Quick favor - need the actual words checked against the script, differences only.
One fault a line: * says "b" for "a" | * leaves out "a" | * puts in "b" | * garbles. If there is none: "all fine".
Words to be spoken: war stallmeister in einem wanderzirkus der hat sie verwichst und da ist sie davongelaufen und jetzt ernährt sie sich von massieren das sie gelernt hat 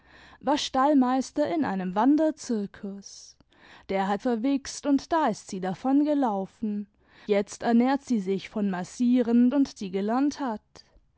* leaves out "sie"
* leaves out "und"
* says "und" for "das"